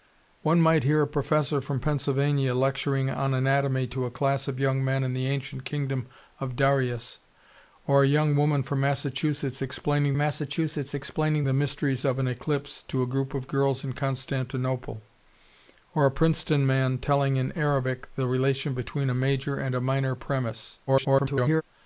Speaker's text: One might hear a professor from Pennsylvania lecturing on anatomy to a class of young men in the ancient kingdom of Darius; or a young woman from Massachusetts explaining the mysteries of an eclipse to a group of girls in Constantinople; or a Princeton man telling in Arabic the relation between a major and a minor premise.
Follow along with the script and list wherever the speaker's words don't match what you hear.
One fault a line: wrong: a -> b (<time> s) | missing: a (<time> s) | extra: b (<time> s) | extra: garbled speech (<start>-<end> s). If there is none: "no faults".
extra: Massachusetts explaining (10.2 s)
extra: garbled speech (20.9-21.6 s)